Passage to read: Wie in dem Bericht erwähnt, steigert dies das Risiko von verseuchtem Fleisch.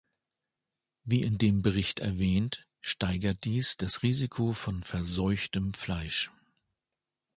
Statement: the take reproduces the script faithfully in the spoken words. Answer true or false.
true